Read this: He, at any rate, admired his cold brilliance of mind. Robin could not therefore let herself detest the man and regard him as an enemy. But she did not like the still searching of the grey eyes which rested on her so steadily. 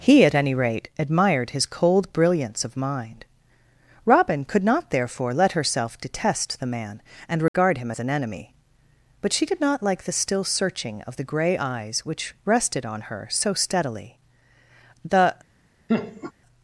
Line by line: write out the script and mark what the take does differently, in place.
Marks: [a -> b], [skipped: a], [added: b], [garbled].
He, at any rate, admired his cold brilliance of mind. Robin could not therefore let herself detest the man and regard him as an enemy. But she did not like the still searching of the grey eyes which rested on her so steadily. [added: The]